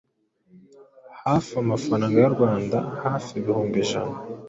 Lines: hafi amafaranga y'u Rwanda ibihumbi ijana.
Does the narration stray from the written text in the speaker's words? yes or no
yes